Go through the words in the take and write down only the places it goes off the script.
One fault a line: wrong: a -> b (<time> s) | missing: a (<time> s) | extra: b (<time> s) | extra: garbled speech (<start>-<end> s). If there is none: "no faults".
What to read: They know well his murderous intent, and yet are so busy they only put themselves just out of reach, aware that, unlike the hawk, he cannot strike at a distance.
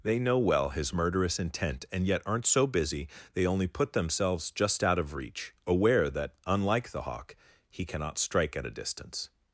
wrong: are -> aren't (2.2 s)